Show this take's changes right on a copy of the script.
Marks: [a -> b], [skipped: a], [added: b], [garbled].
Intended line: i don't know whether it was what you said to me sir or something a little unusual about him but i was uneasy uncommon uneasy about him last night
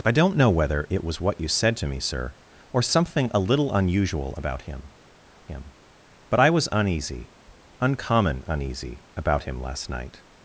i don't know whether it was what you said to me sir or something a little unusual about him [added: him] but i was uneasy uncommon uneasy about him last night